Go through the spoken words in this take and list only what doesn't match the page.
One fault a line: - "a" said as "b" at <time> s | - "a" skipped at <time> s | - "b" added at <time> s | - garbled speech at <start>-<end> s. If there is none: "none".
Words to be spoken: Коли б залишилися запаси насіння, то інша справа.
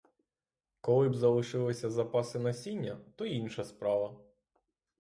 none